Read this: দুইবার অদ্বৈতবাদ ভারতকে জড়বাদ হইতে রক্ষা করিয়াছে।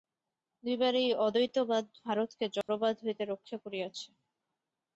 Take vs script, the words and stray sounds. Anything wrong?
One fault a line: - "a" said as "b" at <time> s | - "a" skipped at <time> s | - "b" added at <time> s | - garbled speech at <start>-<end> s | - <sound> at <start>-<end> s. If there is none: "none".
- "এই" added at 0.9 s
- dropout at 2.6-2.7 s